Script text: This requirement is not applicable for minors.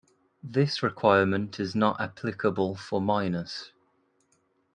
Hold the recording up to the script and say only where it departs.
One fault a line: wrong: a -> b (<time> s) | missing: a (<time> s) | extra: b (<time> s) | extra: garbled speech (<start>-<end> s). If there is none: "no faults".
no faults